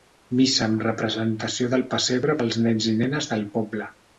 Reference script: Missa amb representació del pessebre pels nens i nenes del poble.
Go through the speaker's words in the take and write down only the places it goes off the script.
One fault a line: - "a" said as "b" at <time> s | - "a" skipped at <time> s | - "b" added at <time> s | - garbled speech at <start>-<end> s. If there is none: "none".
none